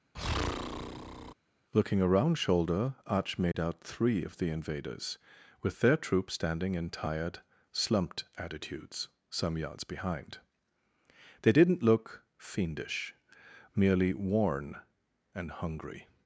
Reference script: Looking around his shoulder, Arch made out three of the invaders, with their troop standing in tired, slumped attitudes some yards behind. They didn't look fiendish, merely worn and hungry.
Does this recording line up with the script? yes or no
no